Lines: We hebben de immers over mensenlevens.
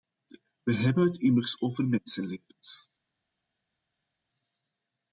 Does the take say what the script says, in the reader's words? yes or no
no